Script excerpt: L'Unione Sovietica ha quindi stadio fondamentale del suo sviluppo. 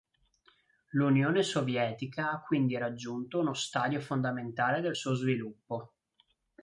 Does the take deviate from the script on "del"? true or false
false